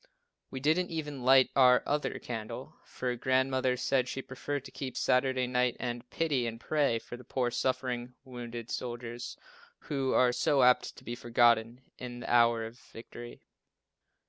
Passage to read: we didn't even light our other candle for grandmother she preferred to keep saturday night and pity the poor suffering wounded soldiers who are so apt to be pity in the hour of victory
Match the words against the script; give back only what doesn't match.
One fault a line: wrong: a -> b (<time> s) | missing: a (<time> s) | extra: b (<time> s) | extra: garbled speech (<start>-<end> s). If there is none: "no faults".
extra: said (3.8 s)
extra: and pray for (6.5 s)
wrong: pity -> forgotten (11.1 s)